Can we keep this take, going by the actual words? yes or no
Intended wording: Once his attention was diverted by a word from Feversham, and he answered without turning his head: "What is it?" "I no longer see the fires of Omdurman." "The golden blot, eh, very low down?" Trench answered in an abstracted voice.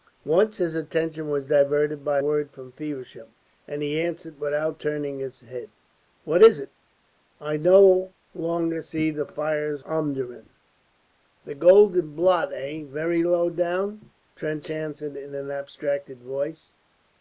no